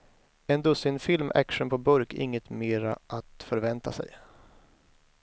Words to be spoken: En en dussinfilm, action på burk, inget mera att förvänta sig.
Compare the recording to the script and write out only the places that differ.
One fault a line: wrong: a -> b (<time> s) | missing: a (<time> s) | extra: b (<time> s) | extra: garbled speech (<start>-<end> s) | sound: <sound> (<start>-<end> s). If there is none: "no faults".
missing: en (0.6 s)